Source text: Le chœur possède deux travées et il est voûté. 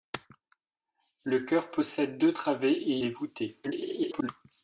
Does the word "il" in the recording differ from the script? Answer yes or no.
yes